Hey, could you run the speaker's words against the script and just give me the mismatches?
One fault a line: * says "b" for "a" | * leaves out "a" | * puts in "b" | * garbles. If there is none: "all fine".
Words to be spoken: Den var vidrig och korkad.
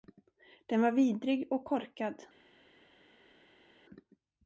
all fine